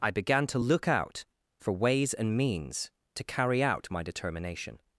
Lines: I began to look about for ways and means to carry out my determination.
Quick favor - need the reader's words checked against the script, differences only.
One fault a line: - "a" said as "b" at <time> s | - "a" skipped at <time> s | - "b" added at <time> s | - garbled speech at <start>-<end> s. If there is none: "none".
- "about" said as "out" at 0.9 s